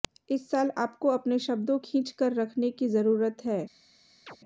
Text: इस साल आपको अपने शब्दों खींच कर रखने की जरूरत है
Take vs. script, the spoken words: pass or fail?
pass